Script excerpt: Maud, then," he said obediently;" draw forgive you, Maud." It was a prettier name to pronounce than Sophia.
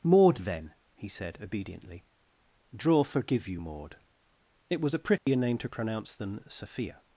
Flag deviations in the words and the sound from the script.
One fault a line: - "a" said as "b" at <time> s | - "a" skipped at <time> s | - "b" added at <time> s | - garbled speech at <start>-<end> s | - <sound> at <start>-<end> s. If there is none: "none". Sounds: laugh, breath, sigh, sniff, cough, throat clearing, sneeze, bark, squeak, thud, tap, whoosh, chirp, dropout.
- dropout at 5.2-5.3 s